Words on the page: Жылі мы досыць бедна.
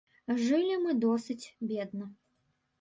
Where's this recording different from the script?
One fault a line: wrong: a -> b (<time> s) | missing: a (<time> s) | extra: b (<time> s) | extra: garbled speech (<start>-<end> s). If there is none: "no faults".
no faults